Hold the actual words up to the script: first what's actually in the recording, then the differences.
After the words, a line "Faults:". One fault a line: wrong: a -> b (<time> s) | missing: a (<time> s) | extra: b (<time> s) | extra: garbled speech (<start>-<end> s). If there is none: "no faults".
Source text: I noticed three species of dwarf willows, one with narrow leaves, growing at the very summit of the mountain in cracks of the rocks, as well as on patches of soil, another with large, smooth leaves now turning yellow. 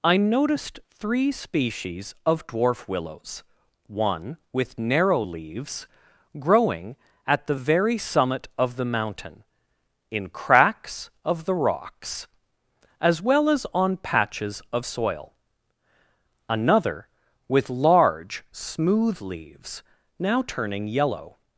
I noticed three species of dwarf willows, one with narrow leaves, growing at the very summit of the mountain in cracks of the rocks, as well as on patches of soil, another with large, smooth leaves now turning yellow.
Faults:
no faults